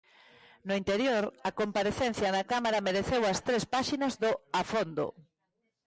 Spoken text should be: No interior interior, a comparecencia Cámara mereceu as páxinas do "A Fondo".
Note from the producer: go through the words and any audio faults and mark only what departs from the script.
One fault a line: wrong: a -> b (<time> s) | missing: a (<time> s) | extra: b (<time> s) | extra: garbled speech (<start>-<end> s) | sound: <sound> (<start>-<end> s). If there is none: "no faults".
missing: interior (1.2 s)
extra: na (2.4 s)
extra: tres (3.5 s)